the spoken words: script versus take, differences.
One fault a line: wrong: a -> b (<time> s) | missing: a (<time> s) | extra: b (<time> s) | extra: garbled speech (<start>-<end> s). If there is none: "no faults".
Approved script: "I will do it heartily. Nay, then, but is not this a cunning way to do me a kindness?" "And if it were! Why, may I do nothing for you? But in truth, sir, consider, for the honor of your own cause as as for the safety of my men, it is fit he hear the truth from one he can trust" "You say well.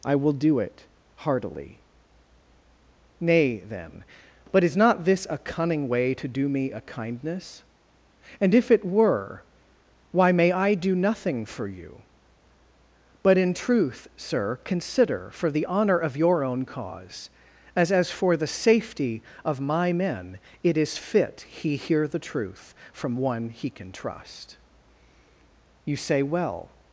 no faults